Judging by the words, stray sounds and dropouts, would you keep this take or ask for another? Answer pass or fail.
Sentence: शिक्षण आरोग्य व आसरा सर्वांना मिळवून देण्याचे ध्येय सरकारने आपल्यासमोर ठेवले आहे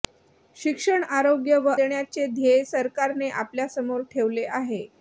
fail